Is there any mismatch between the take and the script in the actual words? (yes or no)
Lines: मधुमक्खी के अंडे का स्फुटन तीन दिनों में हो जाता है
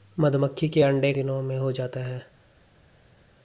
yes